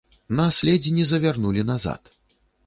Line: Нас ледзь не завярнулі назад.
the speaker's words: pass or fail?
pass